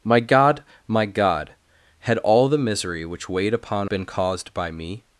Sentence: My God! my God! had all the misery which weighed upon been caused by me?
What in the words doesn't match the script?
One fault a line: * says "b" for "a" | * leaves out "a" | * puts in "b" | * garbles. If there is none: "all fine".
all fine